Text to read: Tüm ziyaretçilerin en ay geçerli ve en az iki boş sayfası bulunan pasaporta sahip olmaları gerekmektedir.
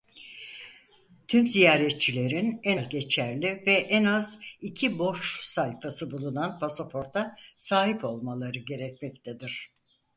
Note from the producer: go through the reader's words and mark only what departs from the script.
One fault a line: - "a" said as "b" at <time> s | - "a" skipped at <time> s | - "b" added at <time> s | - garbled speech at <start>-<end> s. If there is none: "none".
none